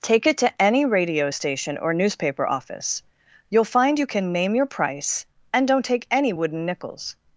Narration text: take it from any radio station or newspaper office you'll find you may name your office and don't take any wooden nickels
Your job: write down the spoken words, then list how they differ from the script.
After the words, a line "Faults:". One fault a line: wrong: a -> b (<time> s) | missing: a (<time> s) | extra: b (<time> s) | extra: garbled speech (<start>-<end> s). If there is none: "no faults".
take it to any radio station or newspaper office you'll find you can name your price and don't take any wooden nickels
Faults:
wrong: from -> to (0.4 s)
wrong: may -> can (4.1 s)
wrong: office -> price (4.7 s)